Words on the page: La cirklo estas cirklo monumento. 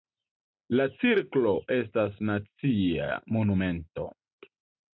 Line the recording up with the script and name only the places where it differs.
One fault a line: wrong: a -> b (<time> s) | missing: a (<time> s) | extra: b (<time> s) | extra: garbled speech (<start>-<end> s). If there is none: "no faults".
wrong: cirklo -> nacia (2.3 s)